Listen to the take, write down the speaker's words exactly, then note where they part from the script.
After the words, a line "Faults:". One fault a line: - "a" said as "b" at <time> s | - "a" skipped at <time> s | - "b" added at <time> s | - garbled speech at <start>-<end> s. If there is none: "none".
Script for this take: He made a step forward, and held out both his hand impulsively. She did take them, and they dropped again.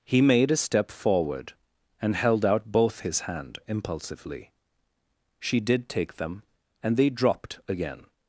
He made a step forward, and held out both his hand impulsively. She did take them, and they dropped again.
Faults:
none